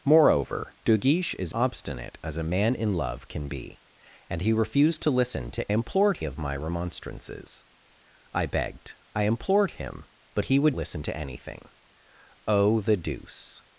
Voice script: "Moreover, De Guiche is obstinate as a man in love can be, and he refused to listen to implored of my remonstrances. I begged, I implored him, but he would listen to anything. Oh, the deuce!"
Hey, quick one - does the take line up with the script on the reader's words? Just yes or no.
yes